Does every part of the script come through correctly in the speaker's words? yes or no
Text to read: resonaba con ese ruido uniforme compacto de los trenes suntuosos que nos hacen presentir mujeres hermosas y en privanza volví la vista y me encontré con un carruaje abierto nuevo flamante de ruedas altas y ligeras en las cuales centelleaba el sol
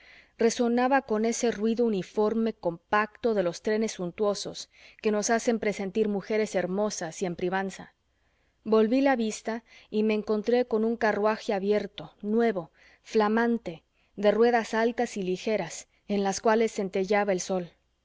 yes